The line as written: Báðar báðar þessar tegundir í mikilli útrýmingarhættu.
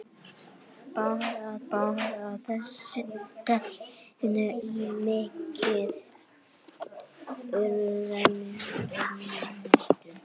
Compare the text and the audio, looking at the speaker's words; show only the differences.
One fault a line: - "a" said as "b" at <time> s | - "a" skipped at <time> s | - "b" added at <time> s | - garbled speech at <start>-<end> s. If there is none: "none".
none